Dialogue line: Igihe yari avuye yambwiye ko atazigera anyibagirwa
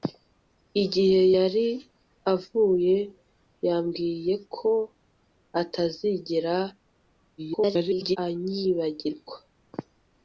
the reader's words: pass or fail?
fail